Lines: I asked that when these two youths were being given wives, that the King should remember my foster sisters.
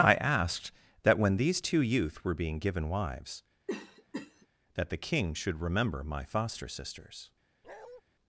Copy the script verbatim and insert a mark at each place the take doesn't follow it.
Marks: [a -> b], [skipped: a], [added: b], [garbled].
I asked that when these two [youths -> youth] were being given wives, that the King should remember my foster sisters.